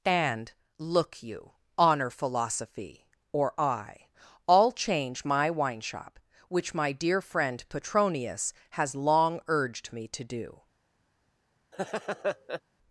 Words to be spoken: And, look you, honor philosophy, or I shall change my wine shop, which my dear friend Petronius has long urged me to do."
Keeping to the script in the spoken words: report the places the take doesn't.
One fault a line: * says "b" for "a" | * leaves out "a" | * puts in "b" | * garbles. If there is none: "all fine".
* says "all" for "shall"